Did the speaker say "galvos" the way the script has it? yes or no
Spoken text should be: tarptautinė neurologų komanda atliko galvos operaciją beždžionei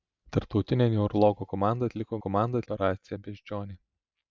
no